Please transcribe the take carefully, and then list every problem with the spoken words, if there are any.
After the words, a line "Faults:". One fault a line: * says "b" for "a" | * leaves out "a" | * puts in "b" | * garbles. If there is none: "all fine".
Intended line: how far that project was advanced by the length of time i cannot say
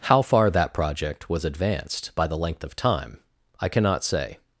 how far that project was advanced by the length of time i cannot say
Faults:
all fine